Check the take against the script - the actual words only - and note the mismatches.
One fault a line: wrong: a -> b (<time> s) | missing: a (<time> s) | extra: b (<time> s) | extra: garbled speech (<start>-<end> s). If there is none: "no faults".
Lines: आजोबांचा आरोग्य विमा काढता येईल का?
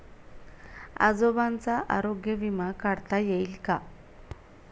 no faults